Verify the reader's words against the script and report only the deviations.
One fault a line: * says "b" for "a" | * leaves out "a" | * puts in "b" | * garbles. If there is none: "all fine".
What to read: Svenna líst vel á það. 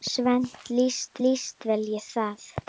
* puts in "líst"